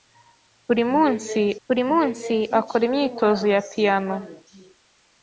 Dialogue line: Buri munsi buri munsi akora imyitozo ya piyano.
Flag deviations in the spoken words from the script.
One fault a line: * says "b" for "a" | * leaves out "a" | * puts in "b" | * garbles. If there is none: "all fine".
all fine